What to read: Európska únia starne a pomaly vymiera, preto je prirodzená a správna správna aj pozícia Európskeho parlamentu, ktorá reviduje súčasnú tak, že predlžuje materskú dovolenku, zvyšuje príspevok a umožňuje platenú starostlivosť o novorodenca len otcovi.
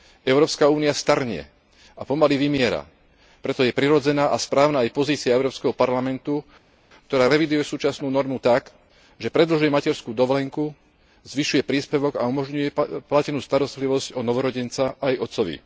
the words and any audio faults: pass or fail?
fail